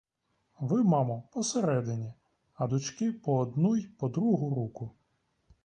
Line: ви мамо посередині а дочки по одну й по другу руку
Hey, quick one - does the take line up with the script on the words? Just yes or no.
yes